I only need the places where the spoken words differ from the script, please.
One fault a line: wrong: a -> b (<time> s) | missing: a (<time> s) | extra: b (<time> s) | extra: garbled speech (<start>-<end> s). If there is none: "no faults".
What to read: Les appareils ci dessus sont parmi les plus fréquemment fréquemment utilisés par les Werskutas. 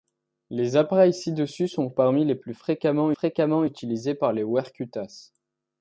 no faults